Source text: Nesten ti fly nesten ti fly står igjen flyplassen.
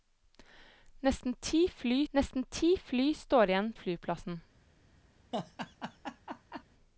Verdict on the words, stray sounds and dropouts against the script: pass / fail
fail